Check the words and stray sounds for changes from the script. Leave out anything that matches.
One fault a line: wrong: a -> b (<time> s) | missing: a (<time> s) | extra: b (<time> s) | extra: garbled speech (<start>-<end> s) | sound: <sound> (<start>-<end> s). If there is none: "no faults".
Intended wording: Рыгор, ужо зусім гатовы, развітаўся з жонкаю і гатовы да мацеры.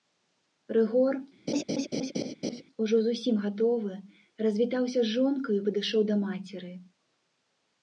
sound: laugh (1.5-2.6 s)
wrong: гатовы -> падышоў (5.7 s)